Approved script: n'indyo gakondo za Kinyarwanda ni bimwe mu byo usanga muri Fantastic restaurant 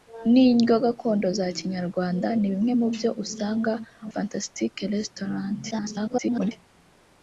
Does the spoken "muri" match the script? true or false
false